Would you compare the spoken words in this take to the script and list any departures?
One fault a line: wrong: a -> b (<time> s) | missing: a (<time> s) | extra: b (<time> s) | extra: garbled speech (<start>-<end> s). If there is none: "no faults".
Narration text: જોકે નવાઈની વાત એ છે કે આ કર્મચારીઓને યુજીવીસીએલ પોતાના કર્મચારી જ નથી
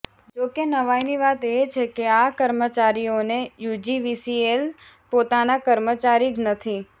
no faults